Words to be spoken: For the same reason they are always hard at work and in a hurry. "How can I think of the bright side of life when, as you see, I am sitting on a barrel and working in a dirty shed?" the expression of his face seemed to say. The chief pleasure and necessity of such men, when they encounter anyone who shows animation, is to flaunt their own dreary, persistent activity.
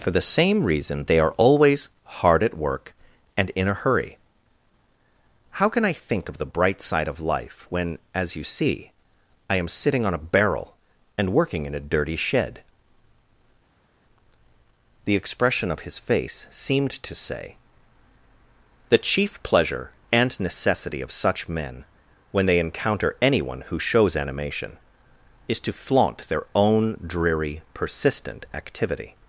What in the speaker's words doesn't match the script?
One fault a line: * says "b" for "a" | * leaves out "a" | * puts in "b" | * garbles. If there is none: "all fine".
all fine